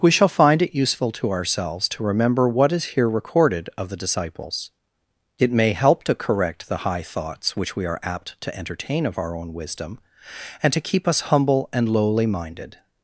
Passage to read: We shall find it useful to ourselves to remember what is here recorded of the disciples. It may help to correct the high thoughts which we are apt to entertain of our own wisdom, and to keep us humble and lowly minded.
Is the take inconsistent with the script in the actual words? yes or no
no